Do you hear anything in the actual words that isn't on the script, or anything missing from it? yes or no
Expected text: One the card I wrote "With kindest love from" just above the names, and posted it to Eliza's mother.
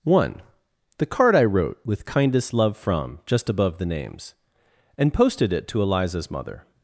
no